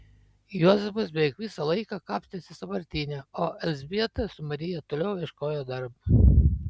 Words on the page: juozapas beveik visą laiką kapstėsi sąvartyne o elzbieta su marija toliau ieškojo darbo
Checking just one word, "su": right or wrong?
right